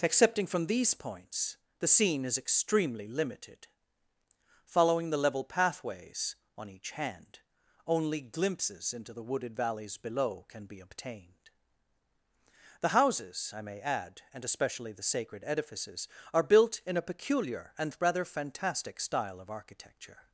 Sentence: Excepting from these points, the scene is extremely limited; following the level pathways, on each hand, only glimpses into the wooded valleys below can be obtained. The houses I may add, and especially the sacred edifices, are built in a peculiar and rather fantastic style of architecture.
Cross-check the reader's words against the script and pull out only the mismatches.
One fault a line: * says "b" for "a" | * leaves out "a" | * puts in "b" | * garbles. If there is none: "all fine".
all fine